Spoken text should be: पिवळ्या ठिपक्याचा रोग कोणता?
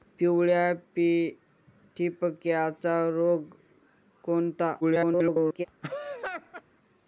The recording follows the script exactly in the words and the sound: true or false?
false